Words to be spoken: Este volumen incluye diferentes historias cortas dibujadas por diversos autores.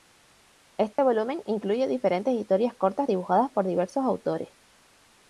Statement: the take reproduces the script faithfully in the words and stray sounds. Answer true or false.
false